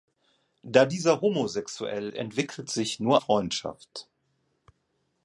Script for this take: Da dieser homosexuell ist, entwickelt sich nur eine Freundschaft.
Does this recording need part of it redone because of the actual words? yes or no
yes